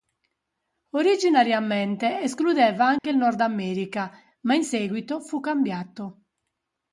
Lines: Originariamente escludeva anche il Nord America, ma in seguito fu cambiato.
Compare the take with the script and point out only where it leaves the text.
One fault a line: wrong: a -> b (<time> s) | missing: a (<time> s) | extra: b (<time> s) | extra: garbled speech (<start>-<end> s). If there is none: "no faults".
no faults